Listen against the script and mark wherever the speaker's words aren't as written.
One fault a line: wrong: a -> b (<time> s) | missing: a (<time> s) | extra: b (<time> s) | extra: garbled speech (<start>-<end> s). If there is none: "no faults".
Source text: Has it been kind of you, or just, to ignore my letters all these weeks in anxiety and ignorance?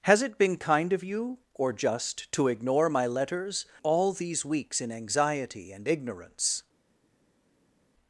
no faults